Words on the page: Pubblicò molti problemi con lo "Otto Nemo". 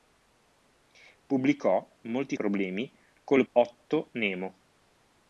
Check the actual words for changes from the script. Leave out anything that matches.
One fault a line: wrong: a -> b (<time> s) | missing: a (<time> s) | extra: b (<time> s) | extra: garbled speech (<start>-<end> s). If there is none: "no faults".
no faults